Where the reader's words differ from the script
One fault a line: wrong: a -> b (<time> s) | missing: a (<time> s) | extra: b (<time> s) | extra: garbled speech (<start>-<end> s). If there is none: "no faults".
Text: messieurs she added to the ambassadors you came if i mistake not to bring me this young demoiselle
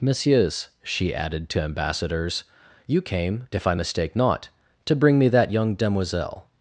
missing: the (1.6 s)
wrong: this -> that (5.3 s)